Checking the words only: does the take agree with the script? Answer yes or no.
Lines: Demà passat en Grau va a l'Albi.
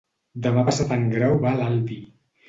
yes